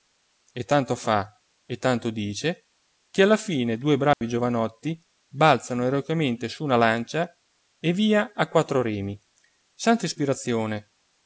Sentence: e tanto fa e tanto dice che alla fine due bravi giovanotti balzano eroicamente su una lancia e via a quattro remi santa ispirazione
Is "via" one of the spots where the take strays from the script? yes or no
no